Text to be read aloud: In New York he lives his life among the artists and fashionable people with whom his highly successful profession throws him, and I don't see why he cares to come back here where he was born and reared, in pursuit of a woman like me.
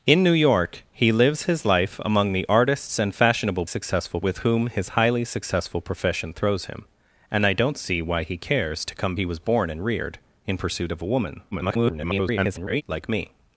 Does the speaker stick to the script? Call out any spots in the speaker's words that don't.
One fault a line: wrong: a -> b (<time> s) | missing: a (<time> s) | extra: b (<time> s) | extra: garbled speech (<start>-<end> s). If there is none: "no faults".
wrong: people -> successful (3.6 s)
missing: back here where (9.2 s)
extra: garbled speech (11.5-12.8 s)